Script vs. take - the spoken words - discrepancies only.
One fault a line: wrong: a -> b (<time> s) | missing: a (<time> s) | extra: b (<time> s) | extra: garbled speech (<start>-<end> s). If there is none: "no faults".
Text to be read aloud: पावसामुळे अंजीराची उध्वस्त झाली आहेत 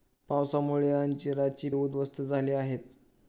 no faults